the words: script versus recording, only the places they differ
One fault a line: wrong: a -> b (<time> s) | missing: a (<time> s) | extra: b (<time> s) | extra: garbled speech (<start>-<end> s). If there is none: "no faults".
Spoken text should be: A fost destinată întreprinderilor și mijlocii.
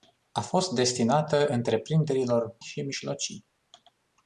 no faults